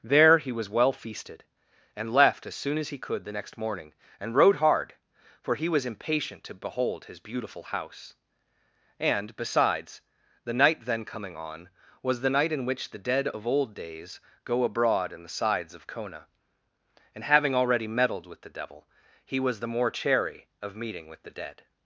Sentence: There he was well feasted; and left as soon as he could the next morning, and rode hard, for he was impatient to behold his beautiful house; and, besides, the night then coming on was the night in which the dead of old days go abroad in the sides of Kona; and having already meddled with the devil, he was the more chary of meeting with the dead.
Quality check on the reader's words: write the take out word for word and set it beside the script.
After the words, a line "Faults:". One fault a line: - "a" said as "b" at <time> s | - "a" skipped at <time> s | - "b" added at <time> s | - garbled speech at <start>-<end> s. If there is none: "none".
There he was well feasted; and left as soon as he could the next morning, and rode hard, for he was impatient to behold his beautiful house; and, besides, the night then coming on was the night in which the dead of old days go abroad in the sides of Kona; and having already meddled with the devil, he was the more chary of meeting with the dead.
Faults:
none